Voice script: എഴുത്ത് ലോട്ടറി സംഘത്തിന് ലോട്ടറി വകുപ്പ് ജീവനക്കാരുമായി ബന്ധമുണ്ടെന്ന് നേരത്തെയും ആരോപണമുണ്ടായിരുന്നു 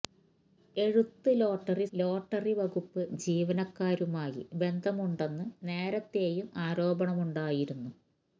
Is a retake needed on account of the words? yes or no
yes